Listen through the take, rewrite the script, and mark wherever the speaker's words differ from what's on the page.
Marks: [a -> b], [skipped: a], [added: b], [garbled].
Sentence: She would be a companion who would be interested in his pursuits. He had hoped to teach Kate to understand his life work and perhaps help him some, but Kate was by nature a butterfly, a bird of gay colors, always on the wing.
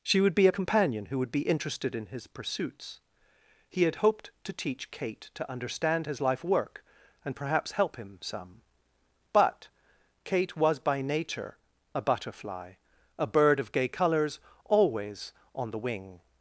She would be a companion who would be interested in his pursuits. He had hoped to teach Kate to understand his life work and perhaps help him some, but Kate was by nature a butterfly, a bird of gay colors, always on the wing.